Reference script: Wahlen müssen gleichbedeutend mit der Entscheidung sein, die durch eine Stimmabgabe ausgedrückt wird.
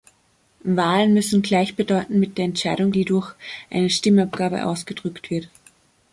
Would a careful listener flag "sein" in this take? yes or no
yes